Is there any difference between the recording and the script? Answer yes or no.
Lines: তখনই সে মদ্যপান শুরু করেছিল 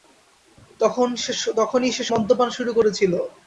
no